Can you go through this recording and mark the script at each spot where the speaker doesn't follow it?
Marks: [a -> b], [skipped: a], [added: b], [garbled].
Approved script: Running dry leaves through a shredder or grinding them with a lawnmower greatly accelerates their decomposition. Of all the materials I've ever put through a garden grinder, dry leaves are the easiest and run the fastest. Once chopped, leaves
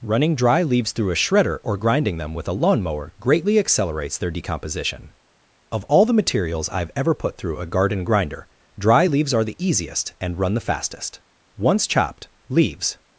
Running dry leaves through a shredder or grinding them with a lawnmower greatly accelerates their decomposition. Of all the materials I've ever put through a garden grinder, dry leaves are the easiest and run the fastest. Once chopped, leaves